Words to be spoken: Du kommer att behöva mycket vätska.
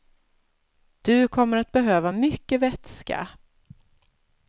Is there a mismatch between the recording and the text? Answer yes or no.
no